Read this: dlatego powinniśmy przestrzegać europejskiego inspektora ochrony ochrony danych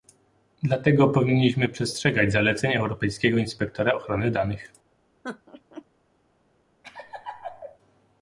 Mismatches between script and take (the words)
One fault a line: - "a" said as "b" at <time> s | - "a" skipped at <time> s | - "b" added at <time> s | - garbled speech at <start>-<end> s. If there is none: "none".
- "zaleceń" added at 2.3 s
- "ochrony" skipped at 4.3 s